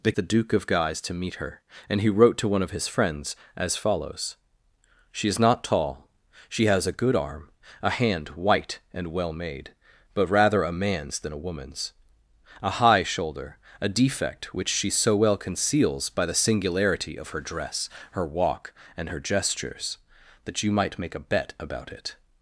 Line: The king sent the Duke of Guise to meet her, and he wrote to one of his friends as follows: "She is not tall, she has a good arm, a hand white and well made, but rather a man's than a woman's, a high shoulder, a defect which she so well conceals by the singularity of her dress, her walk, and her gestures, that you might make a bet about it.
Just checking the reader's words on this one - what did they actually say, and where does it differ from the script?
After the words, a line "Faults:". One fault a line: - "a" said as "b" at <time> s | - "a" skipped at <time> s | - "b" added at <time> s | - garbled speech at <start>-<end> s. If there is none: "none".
The the Duke of Guise to meet her, and he wrote to one of his friends as follows: "She is not tall, she has a good arm, a hand white and well made, but rather a man's than a woman's, a high shoulder, a defect which she so well conceals by the singularity of her dress, her walk, and her gestures, that you might make a bet about it.
Faults:
- "king sent" skipped at 0.1 s